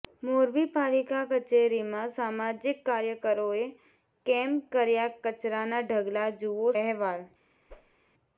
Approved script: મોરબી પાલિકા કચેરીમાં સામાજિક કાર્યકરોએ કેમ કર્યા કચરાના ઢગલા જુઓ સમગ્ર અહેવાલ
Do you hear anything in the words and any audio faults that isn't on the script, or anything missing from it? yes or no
yes